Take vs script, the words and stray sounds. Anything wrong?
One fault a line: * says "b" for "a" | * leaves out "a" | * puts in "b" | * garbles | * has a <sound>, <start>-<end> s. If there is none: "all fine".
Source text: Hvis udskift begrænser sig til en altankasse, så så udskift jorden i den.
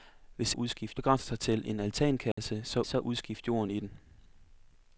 * has a dropout, 2.3-2.4 s